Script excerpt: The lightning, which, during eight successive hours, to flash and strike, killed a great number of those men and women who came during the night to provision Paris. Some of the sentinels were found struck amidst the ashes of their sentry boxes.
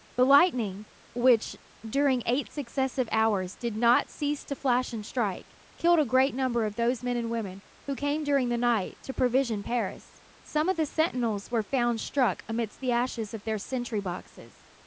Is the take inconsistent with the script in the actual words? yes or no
yes